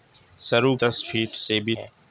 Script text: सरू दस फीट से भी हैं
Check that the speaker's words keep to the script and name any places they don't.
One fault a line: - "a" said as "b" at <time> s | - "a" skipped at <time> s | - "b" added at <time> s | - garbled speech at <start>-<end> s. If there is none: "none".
none